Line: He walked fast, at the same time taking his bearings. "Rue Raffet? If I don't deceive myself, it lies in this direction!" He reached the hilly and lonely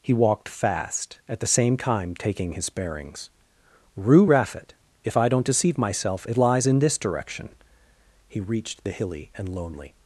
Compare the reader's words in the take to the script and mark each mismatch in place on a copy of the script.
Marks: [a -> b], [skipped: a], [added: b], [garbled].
He walked fast, at the same time taking his bearings. "Rue Raffet? If I don't deceive myself, it lies in this direction!" He reached the hilly and lonely